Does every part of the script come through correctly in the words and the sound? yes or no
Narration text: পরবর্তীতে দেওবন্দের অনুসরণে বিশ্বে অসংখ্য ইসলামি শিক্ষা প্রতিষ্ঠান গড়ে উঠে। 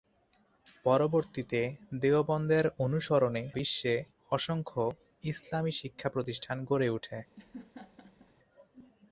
no